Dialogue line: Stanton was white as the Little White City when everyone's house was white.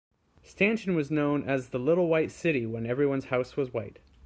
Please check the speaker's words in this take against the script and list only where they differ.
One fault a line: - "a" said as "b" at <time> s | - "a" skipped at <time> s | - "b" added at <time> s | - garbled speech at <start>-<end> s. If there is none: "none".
- "white" said as "known" at 1.1 s